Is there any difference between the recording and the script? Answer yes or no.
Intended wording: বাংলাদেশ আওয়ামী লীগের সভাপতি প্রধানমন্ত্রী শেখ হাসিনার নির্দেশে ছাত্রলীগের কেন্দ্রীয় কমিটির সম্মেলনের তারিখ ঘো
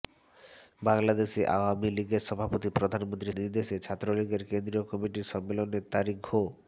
yes